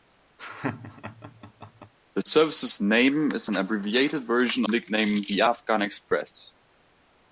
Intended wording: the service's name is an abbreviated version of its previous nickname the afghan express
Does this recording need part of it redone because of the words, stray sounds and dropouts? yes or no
yes